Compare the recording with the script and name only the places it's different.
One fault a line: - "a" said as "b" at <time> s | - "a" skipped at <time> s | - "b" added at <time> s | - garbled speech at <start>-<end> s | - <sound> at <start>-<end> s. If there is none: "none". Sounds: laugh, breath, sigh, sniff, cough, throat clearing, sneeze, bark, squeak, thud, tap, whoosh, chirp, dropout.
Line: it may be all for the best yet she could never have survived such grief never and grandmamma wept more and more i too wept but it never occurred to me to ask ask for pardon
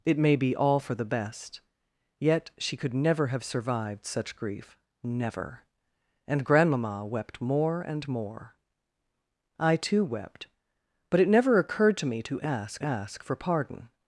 none